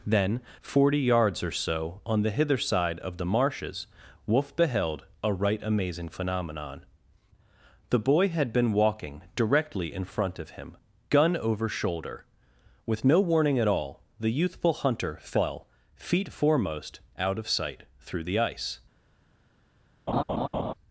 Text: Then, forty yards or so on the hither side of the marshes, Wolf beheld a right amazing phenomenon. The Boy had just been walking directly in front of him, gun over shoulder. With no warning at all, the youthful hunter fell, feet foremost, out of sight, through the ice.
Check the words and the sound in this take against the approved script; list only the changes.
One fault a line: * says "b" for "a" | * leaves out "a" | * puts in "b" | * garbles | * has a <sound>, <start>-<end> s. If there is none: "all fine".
* leaves out "just"
* has a laugh, 20.1-20.7 s